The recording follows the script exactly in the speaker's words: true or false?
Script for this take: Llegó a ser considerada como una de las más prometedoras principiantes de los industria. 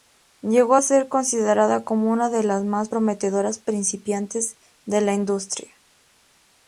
false